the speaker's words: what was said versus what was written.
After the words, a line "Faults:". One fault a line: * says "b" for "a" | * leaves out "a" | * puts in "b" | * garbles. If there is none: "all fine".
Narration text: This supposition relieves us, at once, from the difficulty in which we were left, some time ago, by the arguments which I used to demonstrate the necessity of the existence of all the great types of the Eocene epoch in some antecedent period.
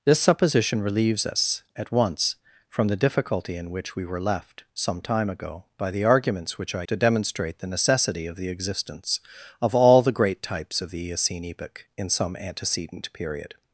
This supposition relieves us, at once, from the difficulty in which we were left, some time ago, by the arguments which I to demonstrate the necessity of the existence of all the great types of the Eocene epoch in some antecedent period.
Faults:
* leaves out "used"